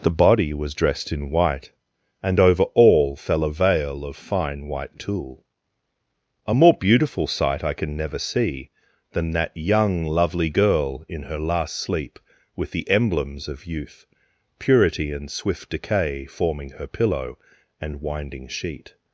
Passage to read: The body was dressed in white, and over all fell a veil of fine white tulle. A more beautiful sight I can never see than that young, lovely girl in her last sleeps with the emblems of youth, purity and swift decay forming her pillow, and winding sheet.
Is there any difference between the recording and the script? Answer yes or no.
yes